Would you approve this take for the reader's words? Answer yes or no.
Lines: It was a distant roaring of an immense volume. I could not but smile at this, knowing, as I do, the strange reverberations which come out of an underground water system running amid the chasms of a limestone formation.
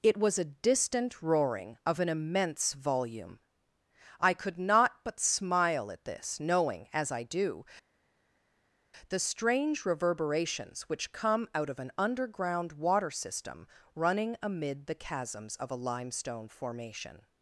yes